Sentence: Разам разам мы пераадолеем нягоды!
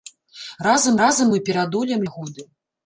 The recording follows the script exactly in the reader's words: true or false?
true